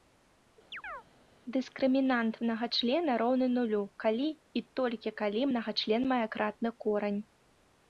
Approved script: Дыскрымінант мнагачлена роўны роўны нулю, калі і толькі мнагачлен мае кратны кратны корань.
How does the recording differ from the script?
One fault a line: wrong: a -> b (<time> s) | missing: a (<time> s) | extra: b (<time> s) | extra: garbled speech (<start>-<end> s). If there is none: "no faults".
missing: роўны (3.5 s)
extra: калі (5.2 s)
missing: кратны (6.7 s)